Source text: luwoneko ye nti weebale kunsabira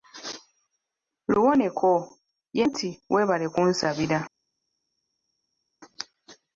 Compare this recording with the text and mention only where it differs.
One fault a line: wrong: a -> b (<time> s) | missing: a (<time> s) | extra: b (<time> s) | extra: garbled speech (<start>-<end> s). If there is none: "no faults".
no faults